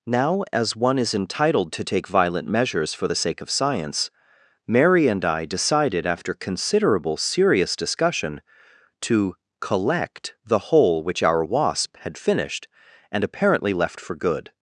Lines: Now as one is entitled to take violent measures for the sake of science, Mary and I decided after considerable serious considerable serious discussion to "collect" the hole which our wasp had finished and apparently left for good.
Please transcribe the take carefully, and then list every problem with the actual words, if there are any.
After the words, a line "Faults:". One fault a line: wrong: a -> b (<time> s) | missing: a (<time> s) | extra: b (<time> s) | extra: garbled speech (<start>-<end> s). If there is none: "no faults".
Now as one is entitled to take violent measures for the sake of science, Mary and I decided after considerable serious discussion to "collect" the hole which our wasp had finished and apparently left for good.
Faults:
missing: considerable serious (7.8 s)